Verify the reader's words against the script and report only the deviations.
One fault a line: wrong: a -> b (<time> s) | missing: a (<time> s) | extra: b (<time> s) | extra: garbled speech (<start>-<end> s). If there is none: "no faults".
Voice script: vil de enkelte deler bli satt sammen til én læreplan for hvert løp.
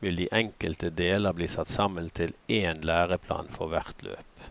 no faults